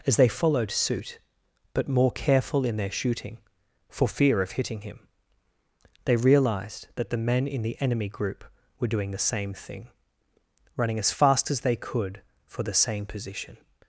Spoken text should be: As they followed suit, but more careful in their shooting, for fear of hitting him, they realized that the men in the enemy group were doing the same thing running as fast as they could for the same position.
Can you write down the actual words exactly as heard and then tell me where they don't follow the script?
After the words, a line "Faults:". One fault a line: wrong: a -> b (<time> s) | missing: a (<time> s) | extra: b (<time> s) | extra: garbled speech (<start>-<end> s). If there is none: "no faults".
As they followed suit, but more careful in their shooting, for fear of hitting him, they realized that the men in the enemy group were doing the same thing running as fast as they could for the same position.
Faults:
no faults